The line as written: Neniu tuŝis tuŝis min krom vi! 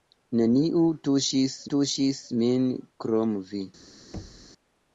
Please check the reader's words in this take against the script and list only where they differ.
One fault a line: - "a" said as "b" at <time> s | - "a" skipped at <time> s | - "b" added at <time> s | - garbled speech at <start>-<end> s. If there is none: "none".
none